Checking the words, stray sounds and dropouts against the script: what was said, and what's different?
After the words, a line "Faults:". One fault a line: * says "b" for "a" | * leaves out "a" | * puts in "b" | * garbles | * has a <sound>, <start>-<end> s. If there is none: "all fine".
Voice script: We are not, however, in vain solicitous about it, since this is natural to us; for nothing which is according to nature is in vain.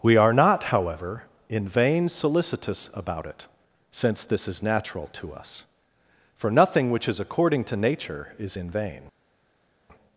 We are not, however, in vain solicitous about it, since this is natural to us; for nothing which is according to nature is in vain.
Faults:
all fine